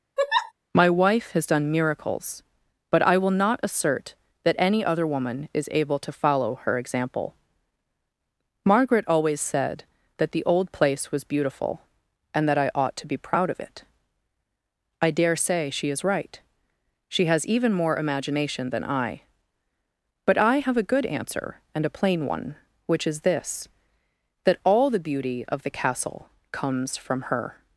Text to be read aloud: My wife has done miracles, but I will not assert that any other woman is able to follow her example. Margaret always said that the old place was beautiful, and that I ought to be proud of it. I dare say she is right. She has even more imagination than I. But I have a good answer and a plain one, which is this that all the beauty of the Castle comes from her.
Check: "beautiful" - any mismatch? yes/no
no